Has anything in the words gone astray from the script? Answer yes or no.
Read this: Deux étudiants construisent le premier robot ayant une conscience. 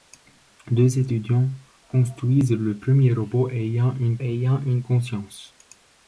yes